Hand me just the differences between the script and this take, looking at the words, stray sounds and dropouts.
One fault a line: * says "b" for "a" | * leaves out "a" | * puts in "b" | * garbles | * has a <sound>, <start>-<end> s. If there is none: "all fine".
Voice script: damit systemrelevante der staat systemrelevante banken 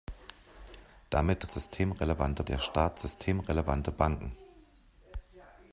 all fine